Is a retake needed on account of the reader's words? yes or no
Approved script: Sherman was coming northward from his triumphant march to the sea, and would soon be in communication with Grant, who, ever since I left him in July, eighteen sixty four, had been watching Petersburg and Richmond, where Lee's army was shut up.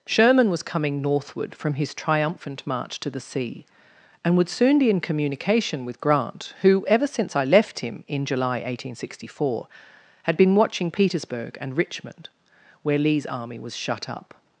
no